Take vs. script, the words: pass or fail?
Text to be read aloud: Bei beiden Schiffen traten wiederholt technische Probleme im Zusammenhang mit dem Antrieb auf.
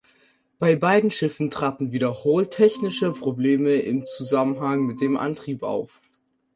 pass